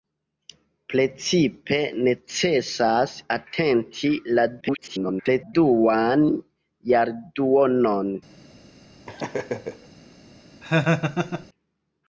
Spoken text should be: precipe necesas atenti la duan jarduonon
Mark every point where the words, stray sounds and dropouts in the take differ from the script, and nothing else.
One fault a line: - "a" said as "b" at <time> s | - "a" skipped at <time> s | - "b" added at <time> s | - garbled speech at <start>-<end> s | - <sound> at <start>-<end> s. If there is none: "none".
- garbled speech at 4.6-5.5 s
- laugh at 9.1-9.9 s
- laugh at 10.6-11.5 s